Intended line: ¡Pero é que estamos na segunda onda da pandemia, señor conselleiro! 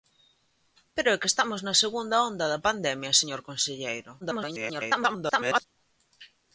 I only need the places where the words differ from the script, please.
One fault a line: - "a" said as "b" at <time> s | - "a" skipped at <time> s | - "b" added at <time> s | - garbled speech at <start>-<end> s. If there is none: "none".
- garbled speech at 4.2-5.6 s